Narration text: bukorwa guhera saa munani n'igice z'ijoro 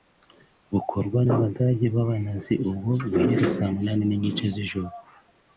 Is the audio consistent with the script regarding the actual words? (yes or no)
no